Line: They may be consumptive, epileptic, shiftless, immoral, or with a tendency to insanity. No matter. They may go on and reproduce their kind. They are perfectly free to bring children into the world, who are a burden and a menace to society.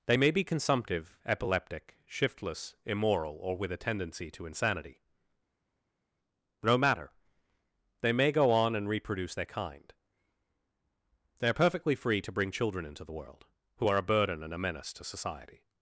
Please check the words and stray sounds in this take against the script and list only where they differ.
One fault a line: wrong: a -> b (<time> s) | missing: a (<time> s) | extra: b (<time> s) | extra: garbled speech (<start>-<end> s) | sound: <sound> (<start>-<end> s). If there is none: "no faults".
no faults